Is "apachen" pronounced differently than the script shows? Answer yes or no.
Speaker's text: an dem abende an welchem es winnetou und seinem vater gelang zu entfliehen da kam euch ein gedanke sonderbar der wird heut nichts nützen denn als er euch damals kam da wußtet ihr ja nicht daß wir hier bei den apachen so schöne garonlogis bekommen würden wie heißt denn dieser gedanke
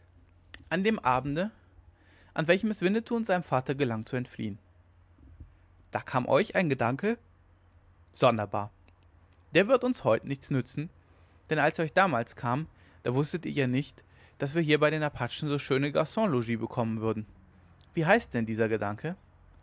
no